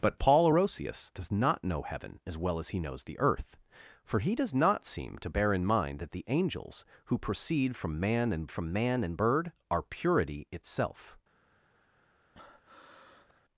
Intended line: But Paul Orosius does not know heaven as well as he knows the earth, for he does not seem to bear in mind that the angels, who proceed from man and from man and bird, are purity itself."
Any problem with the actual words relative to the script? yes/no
no